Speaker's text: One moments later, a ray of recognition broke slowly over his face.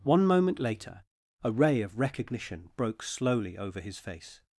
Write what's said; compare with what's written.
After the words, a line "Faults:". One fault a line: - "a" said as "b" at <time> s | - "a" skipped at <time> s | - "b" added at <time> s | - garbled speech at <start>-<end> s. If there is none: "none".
One moment later, a ray of recognition broke slowly over his face.
Faults:
- "moments" said as "moment" at 0.2 s